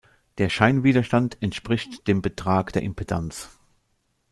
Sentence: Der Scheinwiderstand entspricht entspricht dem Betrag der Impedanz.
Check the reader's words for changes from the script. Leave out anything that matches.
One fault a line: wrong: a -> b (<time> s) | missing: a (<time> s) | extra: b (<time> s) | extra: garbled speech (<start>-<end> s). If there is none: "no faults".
missing: entspricht (2.1 s)